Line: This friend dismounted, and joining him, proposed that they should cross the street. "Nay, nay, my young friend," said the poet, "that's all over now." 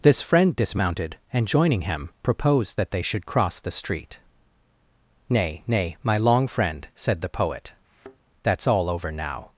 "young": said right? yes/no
no